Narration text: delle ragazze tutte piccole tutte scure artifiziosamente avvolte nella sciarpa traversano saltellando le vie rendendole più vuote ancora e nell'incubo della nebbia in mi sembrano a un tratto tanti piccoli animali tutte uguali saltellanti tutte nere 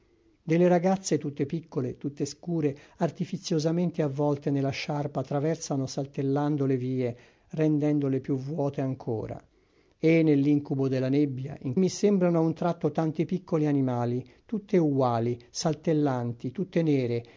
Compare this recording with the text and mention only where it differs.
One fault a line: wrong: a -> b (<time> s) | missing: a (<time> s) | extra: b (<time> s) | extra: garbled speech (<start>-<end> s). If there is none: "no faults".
no faults